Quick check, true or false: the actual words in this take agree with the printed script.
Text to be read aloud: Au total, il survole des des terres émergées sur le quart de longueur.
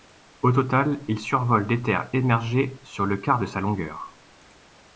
false